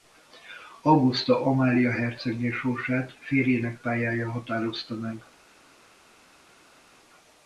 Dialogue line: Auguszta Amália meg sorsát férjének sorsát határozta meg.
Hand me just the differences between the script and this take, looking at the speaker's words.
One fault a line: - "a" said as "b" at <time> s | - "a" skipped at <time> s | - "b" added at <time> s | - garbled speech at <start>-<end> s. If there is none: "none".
- "meg" said as "hercegné" at 1.9 s
- "sorsát" said as "pályája" at 3.8 s